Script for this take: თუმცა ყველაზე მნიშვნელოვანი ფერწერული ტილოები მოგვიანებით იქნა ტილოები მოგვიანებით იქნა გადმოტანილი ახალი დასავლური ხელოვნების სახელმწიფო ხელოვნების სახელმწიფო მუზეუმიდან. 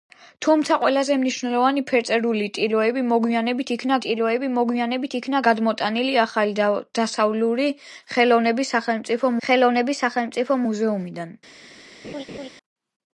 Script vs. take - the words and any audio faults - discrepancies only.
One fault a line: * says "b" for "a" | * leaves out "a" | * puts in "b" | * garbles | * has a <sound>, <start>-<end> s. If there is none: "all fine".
* has a laugh, 12.0-12.5 s